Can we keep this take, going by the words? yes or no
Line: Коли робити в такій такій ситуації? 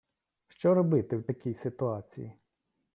no